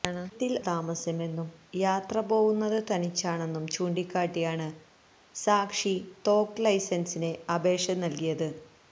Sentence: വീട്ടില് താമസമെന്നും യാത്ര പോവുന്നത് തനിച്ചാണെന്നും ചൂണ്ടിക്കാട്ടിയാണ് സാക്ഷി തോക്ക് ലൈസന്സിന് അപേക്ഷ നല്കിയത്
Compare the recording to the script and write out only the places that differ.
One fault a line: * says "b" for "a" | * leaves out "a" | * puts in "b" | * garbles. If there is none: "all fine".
all fine